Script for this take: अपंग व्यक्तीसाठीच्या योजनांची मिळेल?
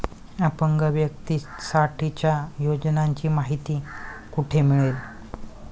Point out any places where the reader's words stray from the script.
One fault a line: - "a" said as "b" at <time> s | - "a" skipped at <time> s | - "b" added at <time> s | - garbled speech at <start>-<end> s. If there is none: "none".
- "माहिती कुठे" added at 3.3 s